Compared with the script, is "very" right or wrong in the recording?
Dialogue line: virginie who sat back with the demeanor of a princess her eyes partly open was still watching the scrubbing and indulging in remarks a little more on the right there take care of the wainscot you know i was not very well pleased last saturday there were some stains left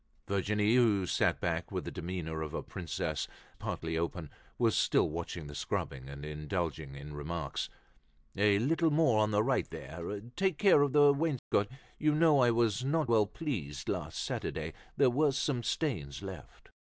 wrong